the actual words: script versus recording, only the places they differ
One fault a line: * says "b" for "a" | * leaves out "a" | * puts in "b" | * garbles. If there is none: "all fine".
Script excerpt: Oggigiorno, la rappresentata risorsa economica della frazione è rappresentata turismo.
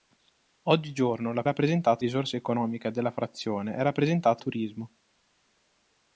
all fine